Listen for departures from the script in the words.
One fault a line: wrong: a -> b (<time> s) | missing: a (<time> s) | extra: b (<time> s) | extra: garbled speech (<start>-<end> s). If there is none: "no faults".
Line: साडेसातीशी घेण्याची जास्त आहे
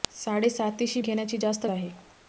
no faults